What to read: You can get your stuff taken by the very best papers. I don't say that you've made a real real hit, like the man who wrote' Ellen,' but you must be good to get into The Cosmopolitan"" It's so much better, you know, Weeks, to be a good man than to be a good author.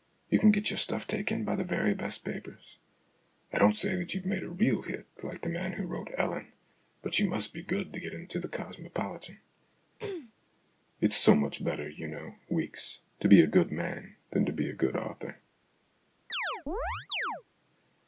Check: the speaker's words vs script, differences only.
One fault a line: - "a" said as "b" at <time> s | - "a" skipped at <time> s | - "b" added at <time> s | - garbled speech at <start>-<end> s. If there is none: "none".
- "real" skipped at 4.8 s